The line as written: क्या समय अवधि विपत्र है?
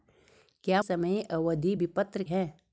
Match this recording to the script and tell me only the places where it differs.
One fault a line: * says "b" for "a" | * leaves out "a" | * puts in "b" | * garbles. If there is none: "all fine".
all fine